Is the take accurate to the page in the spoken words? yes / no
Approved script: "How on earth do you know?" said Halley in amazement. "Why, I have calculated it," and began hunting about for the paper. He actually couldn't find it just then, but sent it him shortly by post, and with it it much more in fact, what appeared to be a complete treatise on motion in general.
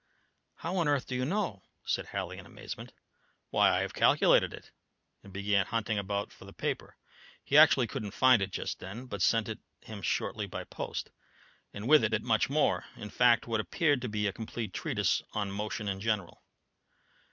yes